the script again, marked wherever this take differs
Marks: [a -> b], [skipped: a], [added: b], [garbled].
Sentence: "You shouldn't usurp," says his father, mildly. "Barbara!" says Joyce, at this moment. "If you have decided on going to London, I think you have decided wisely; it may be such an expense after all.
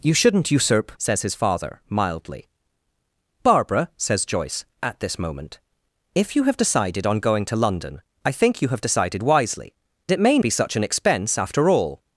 "You shouldn't usurp," says his father, mildly. "Barbara!" says Joyce, at this moment. "If you have decided on going to London, I think you have decided wisely; it may be such an expense after all.